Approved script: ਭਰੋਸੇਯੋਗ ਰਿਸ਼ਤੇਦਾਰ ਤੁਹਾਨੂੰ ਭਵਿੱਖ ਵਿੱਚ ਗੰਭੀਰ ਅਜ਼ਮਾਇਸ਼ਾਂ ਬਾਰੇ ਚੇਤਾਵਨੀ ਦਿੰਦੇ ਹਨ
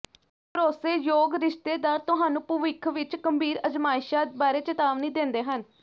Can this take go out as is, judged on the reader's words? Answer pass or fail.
pass